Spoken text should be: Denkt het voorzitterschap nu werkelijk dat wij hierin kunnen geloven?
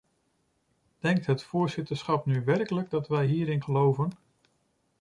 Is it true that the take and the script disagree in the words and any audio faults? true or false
true